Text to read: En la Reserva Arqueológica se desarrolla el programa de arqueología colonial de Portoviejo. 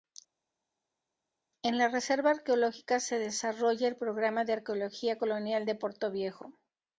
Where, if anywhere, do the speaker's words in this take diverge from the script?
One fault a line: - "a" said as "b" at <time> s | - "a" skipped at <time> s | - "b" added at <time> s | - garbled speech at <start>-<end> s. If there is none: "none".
none